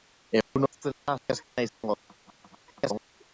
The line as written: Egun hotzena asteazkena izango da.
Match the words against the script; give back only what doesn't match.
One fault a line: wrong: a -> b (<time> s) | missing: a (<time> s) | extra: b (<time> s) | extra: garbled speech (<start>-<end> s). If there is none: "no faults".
extra: garbled speech (2.2-3.1 s)